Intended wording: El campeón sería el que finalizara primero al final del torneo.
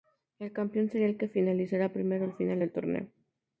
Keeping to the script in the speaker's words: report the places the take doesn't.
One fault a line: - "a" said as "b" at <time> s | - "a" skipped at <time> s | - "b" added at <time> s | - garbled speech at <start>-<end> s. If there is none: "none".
none